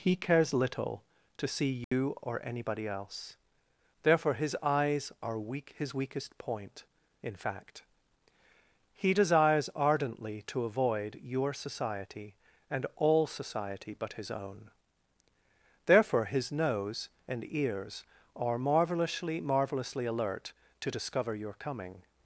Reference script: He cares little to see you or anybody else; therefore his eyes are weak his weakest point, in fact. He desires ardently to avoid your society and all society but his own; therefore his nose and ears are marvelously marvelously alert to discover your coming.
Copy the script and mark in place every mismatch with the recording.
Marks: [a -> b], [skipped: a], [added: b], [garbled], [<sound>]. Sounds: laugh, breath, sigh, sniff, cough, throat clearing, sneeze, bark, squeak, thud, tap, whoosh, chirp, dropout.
He cares little to see you [dropout] or anybody else; therefore his eyes are weak his weakest point, in fact. He desires ardently to avoid your society and all society but his own; therefore his nose and ears are marvelously marvelously alert to discover your coming.